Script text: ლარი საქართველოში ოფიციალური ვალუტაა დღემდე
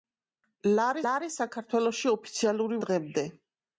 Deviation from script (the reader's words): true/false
true